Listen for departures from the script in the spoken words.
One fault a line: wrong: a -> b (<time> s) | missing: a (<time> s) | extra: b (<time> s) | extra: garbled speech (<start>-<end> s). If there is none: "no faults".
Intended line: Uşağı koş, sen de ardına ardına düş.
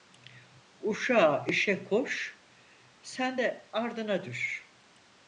extra: işe (1.5 s)
missing: ardına (4.2 s)